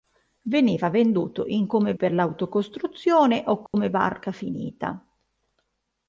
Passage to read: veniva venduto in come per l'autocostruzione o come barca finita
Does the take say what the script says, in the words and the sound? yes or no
no